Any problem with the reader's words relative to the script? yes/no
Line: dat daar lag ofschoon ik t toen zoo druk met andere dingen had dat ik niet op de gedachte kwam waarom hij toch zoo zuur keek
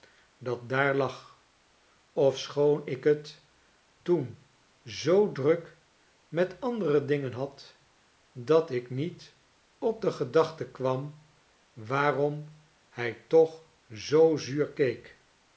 no